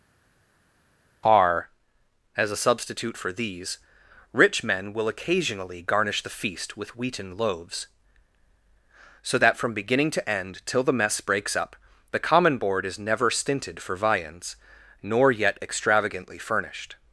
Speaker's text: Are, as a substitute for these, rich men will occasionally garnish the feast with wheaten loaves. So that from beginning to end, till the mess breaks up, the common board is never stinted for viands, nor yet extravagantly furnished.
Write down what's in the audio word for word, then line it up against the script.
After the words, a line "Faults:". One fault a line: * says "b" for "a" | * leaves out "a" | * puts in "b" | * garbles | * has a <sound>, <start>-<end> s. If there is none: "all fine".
Are, as a substitute for these, rich men will occasionally garnish the feast with wheaten loaves. So that from beginning to end, till the mess breaks up, the common board is never stinted for viands, nor yet extravagantly furnished.
Faults:
all fine